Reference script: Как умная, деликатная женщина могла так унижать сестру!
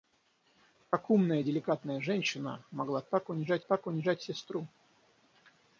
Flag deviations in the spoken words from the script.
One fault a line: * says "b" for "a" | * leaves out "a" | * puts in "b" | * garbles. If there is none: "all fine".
* puts in "так унижать"